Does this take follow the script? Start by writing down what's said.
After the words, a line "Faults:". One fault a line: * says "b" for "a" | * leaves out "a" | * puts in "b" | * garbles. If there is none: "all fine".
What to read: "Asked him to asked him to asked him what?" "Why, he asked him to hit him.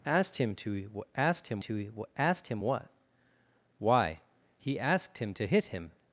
"Asked him to asked him to asked him what?" "Why, he asked him to hit him.
Faults:
all fine